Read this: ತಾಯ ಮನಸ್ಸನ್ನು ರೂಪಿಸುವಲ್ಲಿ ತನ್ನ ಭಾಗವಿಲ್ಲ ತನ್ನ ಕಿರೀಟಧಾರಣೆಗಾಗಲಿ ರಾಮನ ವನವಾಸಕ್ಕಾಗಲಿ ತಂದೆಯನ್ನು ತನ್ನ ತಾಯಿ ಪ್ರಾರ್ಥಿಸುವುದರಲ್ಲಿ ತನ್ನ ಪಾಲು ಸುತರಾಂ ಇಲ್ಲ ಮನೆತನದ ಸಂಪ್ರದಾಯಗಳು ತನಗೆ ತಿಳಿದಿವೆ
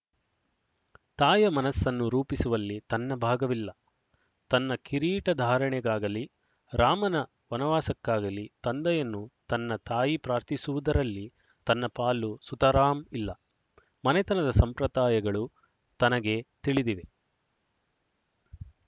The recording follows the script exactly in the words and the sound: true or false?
true